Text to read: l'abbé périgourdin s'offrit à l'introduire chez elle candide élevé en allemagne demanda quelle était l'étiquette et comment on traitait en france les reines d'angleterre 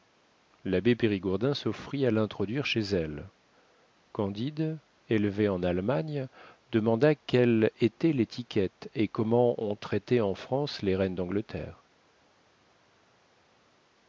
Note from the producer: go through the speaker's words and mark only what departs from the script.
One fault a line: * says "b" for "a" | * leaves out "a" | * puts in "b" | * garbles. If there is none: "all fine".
all fine